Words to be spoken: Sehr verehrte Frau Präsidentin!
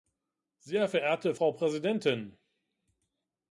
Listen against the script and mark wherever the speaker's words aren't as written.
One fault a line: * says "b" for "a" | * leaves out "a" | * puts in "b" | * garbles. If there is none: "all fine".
all fine